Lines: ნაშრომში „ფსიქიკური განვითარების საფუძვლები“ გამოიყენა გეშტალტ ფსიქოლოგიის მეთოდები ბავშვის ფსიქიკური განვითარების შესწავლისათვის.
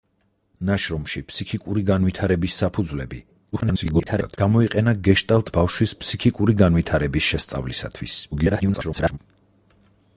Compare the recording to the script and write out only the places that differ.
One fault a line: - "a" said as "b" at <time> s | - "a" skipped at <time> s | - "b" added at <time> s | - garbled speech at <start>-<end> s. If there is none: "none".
- garbled speech at 3.5-4.4 s
- "ფსიქოლოგიის მეთოდები" skipped at 5.5 s
- garbled speech at 8.3-9.2 s